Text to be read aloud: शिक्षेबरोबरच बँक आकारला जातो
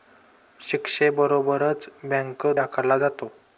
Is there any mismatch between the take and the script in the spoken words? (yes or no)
no